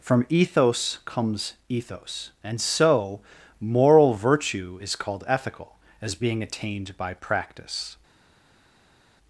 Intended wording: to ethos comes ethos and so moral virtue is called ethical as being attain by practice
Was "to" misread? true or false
true